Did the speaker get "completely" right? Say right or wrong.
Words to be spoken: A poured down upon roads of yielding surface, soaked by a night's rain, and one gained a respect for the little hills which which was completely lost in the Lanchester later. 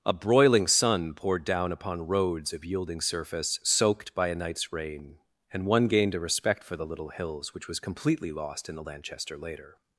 right